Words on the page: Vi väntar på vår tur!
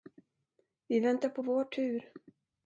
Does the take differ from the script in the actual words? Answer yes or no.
no